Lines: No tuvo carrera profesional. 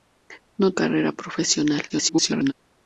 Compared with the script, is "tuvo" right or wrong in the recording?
wrong